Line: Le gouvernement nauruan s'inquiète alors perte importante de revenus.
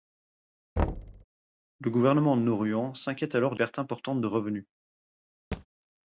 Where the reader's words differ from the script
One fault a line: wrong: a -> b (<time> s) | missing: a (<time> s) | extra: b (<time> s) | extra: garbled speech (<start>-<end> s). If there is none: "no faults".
no faults